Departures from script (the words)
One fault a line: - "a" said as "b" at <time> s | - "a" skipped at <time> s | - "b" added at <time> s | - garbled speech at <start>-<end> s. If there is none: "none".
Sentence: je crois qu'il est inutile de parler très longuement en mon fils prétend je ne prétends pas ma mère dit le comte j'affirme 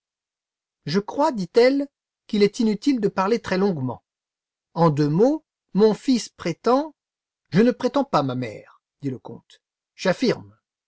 - "dit elle" added at 1.3 s
- "deux mots" added at 4.9 s